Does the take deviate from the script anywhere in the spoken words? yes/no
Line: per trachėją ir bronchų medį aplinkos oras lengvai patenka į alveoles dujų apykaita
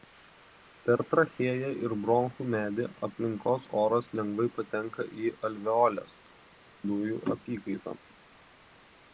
no